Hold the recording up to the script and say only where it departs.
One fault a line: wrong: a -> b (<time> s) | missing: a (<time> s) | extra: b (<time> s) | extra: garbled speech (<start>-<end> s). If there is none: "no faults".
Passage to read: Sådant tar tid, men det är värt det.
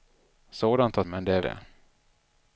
missing: tid (1.0 s)
missing: värt (1.4 s)